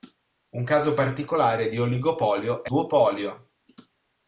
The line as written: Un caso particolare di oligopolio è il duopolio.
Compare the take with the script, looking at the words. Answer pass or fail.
fail